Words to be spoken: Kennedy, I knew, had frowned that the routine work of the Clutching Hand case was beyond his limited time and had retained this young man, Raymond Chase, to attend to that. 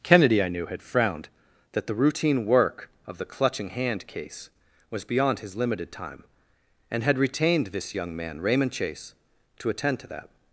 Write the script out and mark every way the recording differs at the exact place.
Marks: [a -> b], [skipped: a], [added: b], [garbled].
Kennedy, I knew, had frowned that the routine work of the Clutching Hand case was beyond his limited time and had retained this young man, Raymond Chase, to attend to that.